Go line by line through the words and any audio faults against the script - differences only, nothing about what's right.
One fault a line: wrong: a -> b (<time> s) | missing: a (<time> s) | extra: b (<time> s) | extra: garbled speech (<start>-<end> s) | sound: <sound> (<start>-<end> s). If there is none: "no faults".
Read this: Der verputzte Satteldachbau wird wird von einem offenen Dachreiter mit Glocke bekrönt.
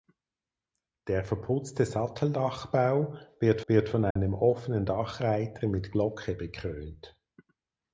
sound: dropout (4.1-4.2 s)